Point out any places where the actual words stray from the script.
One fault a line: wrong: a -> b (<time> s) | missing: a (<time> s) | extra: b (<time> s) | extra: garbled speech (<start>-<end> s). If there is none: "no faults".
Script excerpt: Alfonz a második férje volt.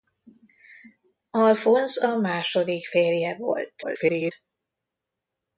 extra: garbled speech (3.8-4.3 s)